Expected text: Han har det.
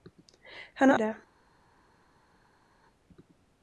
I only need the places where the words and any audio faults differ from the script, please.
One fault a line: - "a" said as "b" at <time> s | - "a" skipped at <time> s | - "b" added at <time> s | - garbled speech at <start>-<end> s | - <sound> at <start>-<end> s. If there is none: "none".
none